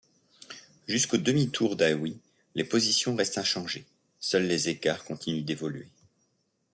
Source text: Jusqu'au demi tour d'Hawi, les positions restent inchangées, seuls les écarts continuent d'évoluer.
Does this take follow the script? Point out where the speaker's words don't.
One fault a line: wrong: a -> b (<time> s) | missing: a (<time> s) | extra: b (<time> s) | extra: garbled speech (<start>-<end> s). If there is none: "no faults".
no faults